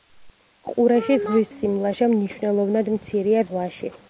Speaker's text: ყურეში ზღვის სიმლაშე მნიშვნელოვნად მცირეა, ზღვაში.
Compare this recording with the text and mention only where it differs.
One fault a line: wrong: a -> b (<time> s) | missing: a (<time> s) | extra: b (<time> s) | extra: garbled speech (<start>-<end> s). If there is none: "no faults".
no faults